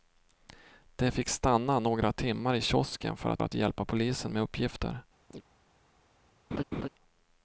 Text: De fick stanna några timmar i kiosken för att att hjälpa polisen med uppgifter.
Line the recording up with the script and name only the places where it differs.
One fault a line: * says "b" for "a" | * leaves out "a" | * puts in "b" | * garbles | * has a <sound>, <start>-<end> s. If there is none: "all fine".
* has a chirp, 5.3-5.4 s
* has a laugh, 6.5-6.9 s